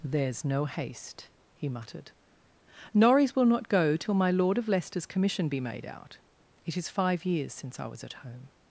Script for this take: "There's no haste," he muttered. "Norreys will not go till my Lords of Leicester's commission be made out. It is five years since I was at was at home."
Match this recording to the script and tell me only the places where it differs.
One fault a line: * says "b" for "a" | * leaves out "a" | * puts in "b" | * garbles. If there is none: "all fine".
* says "Lord" for "Lords"
* leaves out "was at"